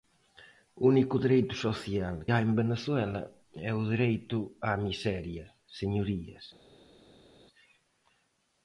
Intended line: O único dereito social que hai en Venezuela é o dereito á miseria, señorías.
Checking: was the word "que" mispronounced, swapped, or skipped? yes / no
yes